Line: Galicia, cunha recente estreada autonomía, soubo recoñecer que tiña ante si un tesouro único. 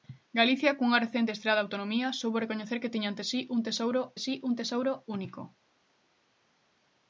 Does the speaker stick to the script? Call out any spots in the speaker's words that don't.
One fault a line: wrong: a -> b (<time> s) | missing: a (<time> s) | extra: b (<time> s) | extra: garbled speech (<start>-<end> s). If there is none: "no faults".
extra: si un tesouro (4.2 s)